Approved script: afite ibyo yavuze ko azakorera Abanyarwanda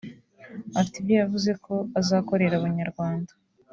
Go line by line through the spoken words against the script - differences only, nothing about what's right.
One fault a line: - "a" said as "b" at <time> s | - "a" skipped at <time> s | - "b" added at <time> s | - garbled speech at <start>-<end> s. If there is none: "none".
none